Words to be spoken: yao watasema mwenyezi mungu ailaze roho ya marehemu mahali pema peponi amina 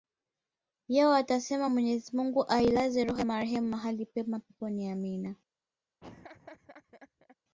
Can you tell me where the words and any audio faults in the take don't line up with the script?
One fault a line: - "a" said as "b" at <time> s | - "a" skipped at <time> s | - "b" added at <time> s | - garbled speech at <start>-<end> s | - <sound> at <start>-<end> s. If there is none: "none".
- laugh at 6.0-7.4 s